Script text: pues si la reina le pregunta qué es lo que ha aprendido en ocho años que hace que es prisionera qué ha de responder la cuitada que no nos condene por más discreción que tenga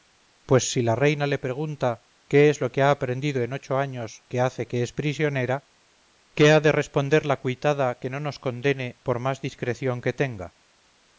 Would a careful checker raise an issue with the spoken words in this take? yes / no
no